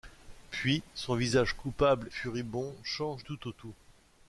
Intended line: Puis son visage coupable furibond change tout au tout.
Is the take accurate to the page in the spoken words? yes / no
yes